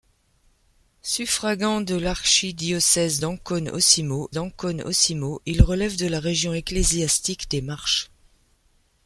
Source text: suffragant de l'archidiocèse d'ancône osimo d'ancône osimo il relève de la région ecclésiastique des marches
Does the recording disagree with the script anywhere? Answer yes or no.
no